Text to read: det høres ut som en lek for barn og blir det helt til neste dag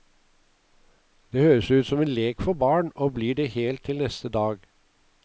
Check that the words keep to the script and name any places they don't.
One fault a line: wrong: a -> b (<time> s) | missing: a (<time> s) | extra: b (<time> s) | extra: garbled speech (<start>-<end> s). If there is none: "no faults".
no faults